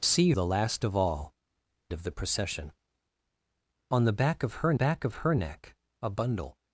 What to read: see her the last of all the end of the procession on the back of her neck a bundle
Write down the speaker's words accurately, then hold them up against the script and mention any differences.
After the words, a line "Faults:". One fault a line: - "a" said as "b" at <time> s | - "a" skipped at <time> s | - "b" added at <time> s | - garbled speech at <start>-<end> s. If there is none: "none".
see the last of all of the procession on the back of her back of her neck a bundle
Faults:
- "her" skipped at 0.3 s
- "the end" skipped at 1.3 s
- "back of her" added at 4.7 s